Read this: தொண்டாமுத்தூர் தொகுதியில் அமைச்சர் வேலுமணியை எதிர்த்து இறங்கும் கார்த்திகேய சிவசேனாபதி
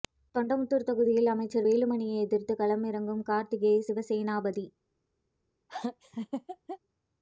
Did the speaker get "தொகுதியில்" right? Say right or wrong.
right